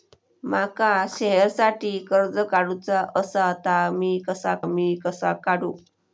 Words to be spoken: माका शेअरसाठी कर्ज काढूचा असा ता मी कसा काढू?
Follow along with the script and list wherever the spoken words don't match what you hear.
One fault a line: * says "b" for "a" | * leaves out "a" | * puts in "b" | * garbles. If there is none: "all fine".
* puts in "मी कसा"